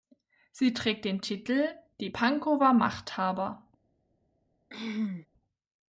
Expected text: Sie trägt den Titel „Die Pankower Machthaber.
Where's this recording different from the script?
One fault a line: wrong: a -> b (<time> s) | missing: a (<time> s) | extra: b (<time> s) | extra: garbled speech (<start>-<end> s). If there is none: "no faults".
no faults